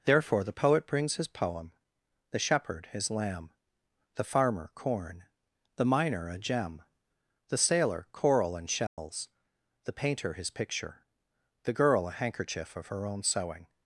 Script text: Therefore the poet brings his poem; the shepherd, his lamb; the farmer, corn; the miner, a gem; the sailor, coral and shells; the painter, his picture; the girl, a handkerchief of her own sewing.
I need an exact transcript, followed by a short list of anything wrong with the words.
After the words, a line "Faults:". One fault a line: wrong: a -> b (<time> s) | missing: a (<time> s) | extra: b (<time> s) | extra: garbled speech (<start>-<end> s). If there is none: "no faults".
Therefore the poet brings his poem; the shepherd, his lamb; the farmer, corn; the miner, a gem; the sailor, coral and shells; the painter, his picture; the girl, a handkerchief of her own sewing.
Faults:
no faults